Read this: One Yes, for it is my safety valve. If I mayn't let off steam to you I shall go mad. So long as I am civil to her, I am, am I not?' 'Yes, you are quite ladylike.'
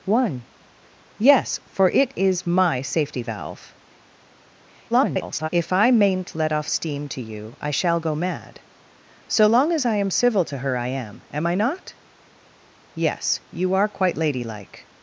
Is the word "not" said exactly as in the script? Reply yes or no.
yes